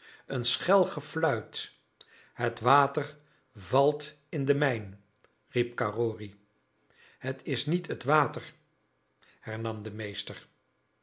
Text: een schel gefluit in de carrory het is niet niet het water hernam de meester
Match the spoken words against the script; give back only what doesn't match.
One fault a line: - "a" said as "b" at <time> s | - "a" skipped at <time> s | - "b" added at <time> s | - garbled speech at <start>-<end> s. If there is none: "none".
- "het water valt" added at 2.3 s
- "mijn riep" added at 4.5 s
- "niet" skipped at 7.9 s